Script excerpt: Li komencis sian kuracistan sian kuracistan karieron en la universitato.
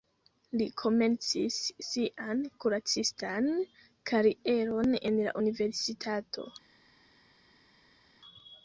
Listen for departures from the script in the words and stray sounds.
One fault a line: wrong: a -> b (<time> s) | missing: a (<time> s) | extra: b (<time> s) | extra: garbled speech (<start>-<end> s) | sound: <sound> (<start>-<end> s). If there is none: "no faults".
missing: sian kuracistan (3.5 s)